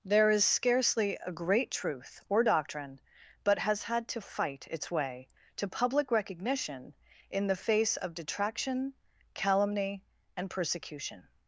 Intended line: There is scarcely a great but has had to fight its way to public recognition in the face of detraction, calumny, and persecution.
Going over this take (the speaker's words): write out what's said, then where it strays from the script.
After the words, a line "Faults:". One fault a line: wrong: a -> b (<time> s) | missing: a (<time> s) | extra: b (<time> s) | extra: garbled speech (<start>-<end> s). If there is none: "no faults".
There is scarcely a great truth or doctrine but has had to fight its way to public recognition in the face of detraction, calumny, and persecution.
Faults:
extra: truth or doctrine (1.7 s)